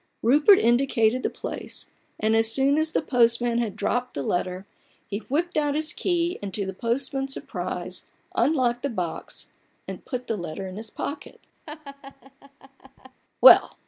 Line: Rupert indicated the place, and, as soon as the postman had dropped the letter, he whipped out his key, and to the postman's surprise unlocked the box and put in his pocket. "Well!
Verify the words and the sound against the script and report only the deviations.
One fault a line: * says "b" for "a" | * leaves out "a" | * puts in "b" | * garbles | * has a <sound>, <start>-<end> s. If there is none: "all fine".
* puts in "the letter"
* has a laugh, 11.7-13.2 s